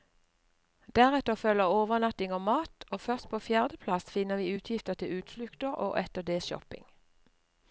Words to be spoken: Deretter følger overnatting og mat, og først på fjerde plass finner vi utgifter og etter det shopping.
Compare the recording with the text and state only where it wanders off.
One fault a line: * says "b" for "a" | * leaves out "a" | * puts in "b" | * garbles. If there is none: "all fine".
* puts in "til utflukter"